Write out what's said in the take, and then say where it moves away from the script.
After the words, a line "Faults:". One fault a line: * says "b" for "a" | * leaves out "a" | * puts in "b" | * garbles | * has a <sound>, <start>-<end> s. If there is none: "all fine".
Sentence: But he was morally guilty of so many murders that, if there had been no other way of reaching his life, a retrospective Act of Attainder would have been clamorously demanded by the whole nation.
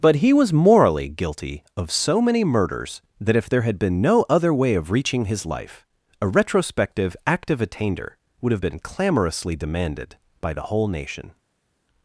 But he was morally guilty of so many murders that, if there had been no other way of reaching his life, a retrospective Act of Attainder would have been clamorously demanded by the whole nation.
Faults:
all fine